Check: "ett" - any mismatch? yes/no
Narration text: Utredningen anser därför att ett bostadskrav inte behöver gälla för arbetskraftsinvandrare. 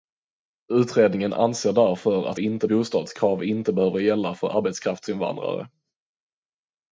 yes